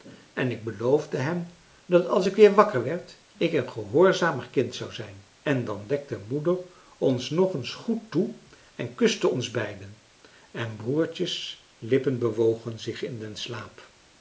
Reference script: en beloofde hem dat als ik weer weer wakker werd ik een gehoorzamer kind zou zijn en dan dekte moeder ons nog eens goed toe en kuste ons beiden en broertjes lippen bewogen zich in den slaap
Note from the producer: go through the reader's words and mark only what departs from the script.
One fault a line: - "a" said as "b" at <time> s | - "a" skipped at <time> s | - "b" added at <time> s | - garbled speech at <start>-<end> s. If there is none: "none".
- "ik" added at 0.5 s
- "weer" skipped at 2.5 s